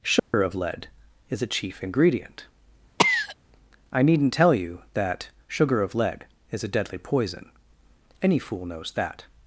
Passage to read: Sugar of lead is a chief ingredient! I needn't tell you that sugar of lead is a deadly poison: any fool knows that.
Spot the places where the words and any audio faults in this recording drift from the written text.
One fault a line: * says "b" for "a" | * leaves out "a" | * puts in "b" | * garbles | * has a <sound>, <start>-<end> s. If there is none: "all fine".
* has a dropout, 0.2-0.3 s
* has a cough, 3.0-3.4 s